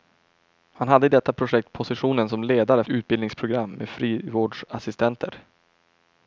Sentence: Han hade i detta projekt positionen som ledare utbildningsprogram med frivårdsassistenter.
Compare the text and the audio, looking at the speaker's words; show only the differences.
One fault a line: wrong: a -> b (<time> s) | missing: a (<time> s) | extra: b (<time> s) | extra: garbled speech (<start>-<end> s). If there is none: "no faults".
no faults